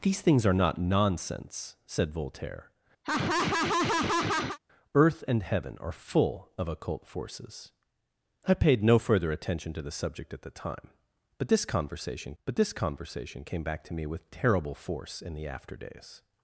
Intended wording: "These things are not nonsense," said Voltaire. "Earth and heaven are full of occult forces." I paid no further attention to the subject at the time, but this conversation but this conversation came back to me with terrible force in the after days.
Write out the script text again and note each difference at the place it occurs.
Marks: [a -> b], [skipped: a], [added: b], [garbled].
"These things are not nonsense," said Voltaire. "Earth and heaven are full of occult forces." I paid no further attention to the subject at the time, but this conversation but this conversation came back to me with terrible force in the after days.